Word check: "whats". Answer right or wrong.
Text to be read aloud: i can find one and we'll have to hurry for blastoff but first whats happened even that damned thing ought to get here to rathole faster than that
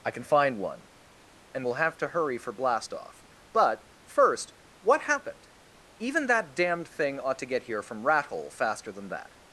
wrong